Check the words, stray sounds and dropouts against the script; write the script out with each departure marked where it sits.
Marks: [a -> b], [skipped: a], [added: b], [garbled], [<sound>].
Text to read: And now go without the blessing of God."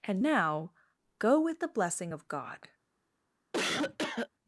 And now go [without -> with] the blessing of God." [cough]